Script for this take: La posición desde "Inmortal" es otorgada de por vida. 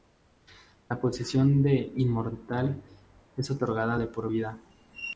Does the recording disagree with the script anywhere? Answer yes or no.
yes